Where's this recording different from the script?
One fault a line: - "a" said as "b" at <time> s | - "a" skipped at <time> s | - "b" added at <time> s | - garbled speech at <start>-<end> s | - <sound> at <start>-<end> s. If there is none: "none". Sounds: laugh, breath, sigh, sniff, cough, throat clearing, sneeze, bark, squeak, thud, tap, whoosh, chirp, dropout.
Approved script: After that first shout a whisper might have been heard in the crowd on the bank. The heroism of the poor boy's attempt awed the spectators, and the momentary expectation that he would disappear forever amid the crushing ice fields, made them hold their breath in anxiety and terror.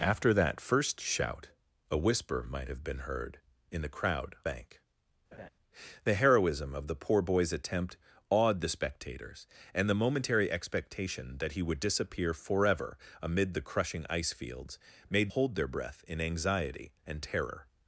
- "on the" skipped at 4.3 s
- laugh at 5.3-5.5 s
- "them" skipped at 15.3 s